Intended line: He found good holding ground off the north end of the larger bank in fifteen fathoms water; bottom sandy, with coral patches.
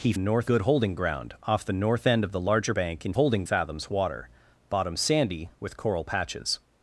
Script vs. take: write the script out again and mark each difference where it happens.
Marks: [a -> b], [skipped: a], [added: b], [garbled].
He [found -> north] good holding ground off the north end of the larger bank in [fifteen -> holding] fathoms water; bottom sandy, with coral patches.